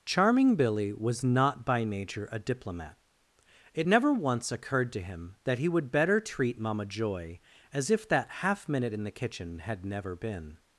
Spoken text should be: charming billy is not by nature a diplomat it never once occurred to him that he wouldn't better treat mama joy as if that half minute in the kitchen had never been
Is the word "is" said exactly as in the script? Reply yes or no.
no